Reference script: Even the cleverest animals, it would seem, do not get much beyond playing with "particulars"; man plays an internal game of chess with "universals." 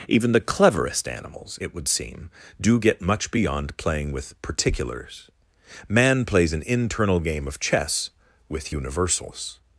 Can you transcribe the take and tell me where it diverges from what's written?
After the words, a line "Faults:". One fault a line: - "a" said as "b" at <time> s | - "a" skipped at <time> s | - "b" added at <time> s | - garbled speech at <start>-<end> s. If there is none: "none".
Even the cleverest animals, it would seem, do get much beyond playing with "particulars"; man plays an internal game of chess with "universals."
Faults:
- "not" skipped at 2.8 s